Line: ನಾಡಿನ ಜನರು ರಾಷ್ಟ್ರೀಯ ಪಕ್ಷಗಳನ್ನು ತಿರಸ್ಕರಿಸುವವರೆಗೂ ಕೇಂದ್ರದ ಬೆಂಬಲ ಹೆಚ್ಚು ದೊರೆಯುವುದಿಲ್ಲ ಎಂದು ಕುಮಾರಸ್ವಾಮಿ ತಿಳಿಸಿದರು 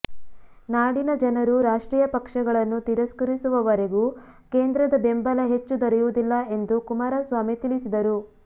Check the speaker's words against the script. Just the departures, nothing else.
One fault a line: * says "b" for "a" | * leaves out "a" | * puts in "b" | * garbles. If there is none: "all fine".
all fine